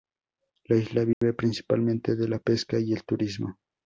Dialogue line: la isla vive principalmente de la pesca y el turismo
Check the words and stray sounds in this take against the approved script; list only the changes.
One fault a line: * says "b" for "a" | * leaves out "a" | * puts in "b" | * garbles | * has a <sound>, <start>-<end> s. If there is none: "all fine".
* has a dropout, 1.1-1.2 s